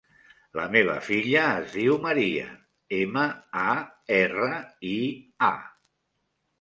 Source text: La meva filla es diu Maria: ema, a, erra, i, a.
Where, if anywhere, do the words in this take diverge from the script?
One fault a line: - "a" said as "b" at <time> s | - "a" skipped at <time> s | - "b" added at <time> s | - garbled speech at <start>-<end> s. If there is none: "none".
none